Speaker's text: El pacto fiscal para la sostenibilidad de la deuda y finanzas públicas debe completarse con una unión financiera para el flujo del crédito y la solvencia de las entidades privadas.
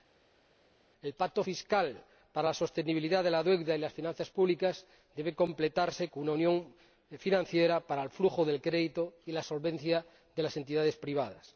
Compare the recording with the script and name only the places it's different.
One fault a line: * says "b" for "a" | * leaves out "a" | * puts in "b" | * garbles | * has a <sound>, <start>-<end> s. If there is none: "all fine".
* puts in "las"